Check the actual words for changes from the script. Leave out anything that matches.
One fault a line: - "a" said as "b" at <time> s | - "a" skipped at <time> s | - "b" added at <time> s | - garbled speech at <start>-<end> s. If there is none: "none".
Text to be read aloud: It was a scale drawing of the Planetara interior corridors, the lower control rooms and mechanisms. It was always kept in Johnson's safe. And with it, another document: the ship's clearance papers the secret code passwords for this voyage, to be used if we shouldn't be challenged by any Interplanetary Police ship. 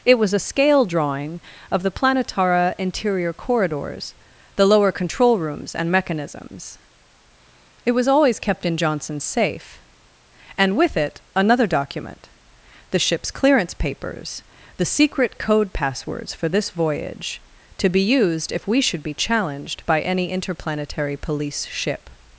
- "shouldn't" said as "should" at 18.8 s